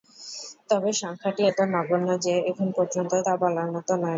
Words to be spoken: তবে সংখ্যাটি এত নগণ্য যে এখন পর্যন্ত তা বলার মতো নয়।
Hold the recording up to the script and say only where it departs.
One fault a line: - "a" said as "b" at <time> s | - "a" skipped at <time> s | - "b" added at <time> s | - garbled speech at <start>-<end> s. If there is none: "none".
none